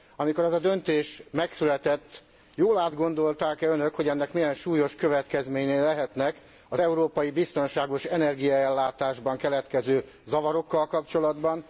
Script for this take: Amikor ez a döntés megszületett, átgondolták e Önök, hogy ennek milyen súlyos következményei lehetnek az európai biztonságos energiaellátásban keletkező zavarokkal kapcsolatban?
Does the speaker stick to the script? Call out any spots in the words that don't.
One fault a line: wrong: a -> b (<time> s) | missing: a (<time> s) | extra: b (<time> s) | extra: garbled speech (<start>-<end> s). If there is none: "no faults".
extra: jól (2.5 s)